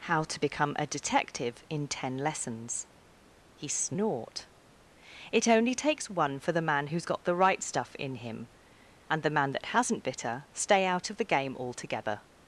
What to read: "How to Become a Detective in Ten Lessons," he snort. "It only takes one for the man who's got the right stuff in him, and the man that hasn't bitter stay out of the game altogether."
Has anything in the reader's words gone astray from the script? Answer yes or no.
no